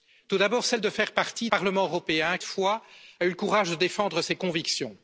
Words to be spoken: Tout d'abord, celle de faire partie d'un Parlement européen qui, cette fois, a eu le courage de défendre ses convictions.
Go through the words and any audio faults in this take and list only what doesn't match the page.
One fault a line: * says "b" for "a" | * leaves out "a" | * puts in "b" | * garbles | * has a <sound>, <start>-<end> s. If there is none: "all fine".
* leaves out "d'un"
* leaves out "qui cette"